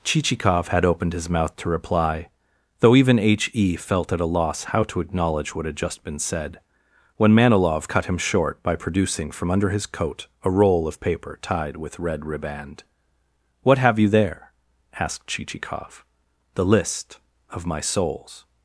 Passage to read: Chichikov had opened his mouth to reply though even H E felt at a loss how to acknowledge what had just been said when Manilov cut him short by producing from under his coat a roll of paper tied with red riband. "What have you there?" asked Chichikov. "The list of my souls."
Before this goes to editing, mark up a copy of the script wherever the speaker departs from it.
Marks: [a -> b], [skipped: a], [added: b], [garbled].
Chichikov had opened his mouth to reply though even H E felt at a loss how to acknowledge what had just been said when Manilov cut him short by producing from under his coat a roll of paper tied with red riband. "What have you there?" asked Chichikov. "The list of my souls."